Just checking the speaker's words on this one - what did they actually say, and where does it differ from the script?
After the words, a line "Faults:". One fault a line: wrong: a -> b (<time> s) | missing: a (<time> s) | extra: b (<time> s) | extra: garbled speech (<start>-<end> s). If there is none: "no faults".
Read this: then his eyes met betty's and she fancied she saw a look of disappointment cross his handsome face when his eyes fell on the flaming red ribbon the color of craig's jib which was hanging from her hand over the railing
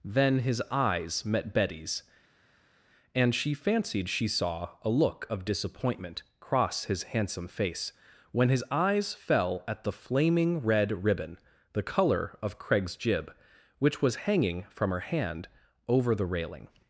then his eyes met betty's and she fancied she saw a look of disappointment cross his handsome face when his eyes fell at the flaming red ribbon the color of craig's jib which was hanging from her hand over the railing
Faults:
wrong: on -> at (9.7 s)